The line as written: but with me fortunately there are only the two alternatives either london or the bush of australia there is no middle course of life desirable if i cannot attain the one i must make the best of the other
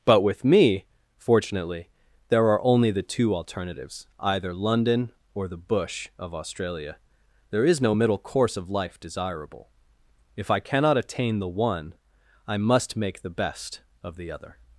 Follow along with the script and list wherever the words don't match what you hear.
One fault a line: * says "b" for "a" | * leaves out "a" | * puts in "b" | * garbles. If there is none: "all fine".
all fine